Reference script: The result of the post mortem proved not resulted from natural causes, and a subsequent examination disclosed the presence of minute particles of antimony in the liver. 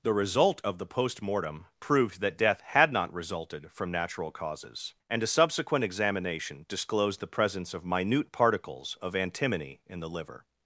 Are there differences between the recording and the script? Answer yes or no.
yes